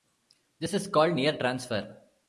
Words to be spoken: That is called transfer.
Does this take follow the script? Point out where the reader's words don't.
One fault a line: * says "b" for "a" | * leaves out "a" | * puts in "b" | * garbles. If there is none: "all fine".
* says "This" for "That"
* puts in "near"